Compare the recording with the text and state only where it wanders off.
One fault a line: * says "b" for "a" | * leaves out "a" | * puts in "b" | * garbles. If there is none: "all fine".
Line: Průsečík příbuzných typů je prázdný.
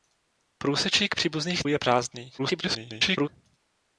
* leaves out "typů"
* garbles